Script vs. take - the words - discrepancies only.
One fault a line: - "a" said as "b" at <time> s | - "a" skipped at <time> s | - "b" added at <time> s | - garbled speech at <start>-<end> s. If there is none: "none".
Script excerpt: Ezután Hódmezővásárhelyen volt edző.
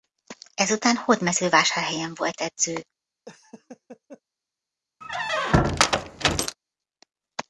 none